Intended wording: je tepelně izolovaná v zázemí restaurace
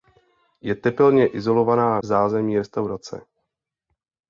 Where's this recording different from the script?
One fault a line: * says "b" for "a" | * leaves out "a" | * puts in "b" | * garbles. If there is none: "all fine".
all fine